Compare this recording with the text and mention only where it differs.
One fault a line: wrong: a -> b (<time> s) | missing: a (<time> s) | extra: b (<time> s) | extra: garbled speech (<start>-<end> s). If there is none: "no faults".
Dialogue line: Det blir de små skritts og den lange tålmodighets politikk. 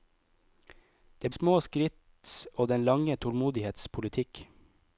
missing: blir de (1.3 s)